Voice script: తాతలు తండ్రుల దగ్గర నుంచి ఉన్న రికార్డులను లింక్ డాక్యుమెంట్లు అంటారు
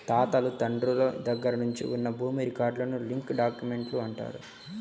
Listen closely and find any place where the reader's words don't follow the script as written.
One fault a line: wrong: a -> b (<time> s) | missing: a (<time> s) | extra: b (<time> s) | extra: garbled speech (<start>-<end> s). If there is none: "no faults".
extra: భూమి (2.1 s)